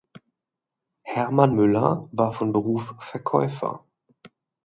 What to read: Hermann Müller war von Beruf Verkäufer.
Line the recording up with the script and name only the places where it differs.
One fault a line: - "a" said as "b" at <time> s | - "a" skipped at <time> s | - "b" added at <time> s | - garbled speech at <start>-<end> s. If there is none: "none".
none